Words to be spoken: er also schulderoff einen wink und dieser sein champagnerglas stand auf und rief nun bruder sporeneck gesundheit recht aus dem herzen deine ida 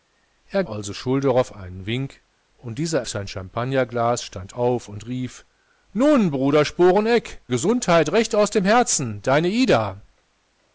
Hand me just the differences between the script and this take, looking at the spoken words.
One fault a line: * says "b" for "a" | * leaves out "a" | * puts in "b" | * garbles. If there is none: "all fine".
all fine